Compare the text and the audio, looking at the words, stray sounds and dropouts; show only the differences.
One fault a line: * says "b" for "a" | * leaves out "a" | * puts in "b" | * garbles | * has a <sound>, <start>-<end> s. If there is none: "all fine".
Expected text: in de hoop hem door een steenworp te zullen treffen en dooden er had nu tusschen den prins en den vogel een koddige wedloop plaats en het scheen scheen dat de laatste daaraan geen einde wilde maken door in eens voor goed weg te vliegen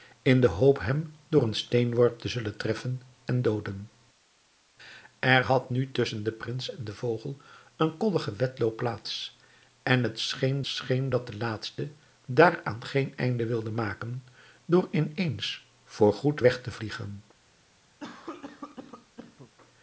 * has a cough, 18.0-19.5 s